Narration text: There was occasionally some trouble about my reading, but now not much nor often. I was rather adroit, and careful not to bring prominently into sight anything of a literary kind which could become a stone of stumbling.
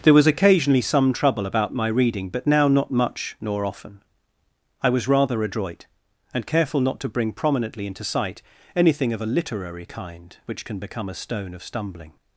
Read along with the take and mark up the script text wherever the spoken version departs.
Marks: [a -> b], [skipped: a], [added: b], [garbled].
There was occasionally some trouble about my reading, but now not much nor often. I was rather adroit, and careful not to bring prominently into sight anything of a literary kind which [could -> can] become a stone of stumbling.